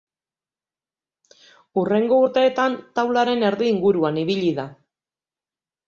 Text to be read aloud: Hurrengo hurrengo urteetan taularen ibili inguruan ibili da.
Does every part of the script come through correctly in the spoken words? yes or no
no